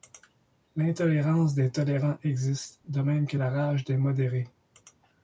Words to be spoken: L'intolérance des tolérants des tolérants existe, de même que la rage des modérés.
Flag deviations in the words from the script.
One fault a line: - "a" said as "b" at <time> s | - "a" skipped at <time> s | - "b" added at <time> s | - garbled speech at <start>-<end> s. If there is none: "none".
- "des tolérants" skipped at 2.2 s